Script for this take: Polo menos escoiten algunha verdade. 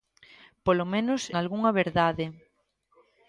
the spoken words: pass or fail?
fail